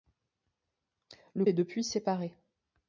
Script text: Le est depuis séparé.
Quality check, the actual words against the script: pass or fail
pass